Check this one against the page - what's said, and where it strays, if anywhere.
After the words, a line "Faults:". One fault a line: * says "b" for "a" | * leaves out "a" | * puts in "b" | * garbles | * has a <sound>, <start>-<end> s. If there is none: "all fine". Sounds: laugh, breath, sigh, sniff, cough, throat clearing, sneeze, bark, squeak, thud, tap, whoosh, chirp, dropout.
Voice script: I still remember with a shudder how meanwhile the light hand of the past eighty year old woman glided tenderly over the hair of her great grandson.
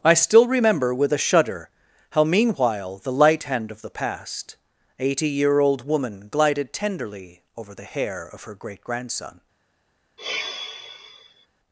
I still remember with a shudder how meanwhile the light hand of the past eighty year old woman glided tenderly over the hair of her great grandson.
Faults:
* has a sigh, 10.2-11.5 s